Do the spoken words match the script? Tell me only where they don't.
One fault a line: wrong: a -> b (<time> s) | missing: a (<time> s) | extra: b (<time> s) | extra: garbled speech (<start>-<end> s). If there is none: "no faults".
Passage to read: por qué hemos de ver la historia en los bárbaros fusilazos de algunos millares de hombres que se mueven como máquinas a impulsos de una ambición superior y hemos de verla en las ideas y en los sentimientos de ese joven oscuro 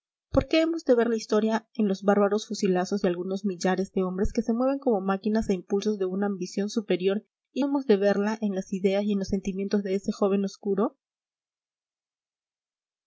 no faults